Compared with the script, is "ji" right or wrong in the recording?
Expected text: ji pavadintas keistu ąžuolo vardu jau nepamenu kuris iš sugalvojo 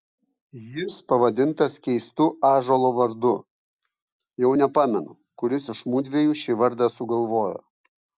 wrong